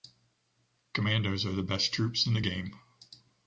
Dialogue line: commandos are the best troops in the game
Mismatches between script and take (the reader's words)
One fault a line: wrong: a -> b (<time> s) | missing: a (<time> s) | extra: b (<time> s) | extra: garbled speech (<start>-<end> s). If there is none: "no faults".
no faults